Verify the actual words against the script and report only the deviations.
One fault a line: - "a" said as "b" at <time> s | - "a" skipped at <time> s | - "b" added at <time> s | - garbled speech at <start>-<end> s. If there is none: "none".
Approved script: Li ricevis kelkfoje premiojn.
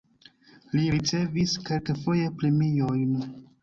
none